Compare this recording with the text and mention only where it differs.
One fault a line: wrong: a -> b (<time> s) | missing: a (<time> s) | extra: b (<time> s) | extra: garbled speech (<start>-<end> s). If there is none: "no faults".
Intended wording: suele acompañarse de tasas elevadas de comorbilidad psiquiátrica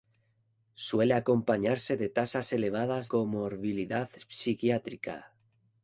missing: de (3.1 s)